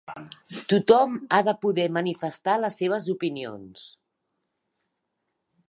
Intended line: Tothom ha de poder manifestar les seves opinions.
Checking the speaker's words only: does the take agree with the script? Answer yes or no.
yes